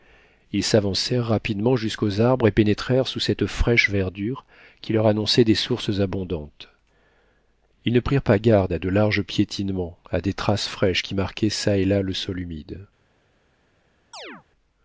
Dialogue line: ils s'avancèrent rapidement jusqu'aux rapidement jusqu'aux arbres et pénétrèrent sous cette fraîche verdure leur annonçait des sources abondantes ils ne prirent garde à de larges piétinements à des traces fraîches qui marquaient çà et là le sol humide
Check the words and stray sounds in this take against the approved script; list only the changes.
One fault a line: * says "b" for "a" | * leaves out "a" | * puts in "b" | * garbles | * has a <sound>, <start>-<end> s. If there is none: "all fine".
* leaves out "rapidement jusqu'aux"
* puts in "qui"
* puts in "pas"
* has a chirp, 14.1-14.4 s